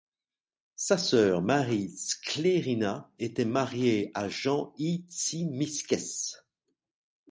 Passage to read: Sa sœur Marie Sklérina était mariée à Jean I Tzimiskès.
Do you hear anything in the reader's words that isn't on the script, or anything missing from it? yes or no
no